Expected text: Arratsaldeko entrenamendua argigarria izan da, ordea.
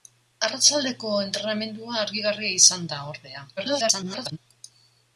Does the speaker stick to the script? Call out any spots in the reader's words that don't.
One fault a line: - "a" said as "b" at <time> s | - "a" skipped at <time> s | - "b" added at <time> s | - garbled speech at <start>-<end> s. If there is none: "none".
- garbled speech at 3.6-4.4 s